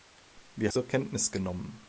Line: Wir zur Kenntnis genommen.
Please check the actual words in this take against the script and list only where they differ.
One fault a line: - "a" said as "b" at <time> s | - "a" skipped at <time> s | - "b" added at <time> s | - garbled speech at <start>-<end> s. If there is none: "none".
none